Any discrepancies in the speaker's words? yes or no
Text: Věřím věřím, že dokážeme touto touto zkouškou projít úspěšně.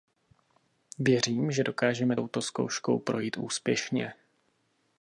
yes